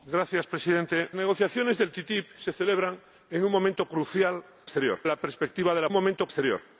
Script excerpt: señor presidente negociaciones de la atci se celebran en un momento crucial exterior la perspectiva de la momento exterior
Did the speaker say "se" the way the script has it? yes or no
yes